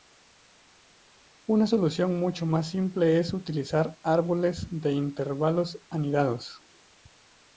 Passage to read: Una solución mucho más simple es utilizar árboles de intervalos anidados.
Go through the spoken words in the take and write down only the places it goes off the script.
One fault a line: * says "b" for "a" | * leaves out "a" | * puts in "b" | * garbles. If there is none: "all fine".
all fine